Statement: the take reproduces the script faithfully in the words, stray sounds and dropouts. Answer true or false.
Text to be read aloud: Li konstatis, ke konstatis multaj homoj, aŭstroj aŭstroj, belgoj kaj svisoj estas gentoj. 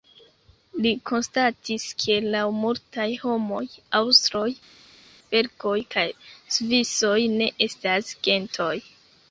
false